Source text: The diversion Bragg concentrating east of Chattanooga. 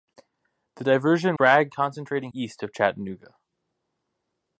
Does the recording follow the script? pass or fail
pass